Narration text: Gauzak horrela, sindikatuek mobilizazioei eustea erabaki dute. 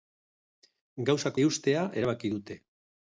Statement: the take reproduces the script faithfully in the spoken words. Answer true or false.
false